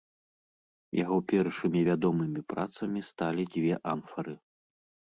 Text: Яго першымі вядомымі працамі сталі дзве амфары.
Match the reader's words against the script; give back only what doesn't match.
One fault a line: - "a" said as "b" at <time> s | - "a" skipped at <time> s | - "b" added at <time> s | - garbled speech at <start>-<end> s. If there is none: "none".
none